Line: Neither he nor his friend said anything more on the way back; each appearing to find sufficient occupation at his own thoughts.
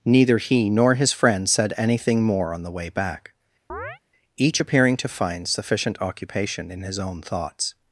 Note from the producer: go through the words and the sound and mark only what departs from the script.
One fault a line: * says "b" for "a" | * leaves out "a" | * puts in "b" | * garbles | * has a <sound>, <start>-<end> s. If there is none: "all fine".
* has a chirp, 3.7-4.0 s
* says "in" for "at"